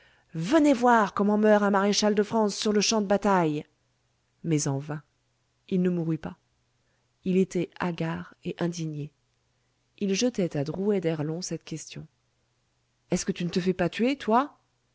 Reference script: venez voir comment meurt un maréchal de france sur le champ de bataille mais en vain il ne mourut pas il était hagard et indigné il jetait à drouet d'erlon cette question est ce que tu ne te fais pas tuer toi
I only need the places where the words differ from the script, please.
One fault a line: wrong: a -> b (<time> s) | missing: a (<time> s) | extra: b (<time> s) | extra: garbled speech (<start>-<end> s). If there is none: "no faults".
no faults